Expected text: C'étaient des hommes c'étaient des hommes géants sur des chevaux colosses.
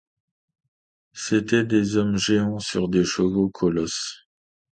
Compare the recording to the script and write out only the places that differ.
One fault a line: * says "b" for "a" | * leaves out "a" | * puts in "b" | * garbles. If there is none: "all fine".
* leaves out "c'étaient des hommes"